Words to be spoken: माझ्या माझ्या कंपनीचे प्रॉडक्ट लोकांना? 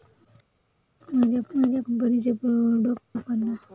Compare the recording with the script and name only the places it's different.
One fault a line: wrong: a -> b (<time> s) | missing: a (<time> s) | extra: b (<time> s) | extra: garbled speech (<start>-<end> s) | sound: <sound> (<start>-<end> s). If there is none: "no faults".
no faults